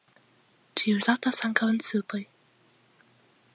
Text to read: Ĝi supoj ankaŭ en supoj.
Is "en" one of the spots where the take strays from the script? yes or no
no